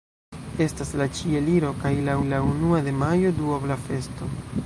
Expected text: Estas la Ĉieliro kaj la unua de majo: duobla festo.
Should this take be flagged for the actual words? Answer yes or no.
yes